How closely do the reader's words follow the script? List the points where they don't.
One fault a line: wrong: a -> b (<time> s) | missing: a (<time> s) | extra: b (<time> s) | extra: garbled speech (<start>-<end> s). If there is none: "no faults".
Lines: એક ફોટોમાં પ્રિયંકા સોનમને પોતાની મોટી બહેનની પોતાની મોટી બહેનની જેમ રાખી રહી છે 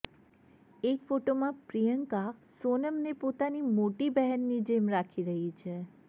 missing: પોતાની મોટી બહેનની (4.6 s)